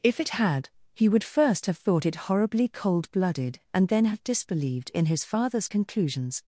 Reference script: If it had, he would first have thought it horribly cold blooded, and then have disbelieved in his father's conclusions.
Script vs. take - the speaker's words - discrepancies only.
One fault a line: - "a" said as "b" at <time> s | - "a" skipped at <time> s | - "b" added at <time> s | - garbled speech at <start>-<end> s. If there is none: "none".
none